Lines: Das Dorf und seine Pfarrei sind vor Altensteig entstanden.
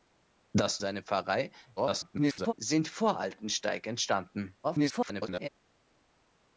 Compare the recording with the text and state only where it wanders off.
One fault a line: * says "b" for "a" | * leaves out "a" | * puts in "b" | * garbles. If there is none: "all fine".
* leaves out "Dorf und"
* garbles
* garbles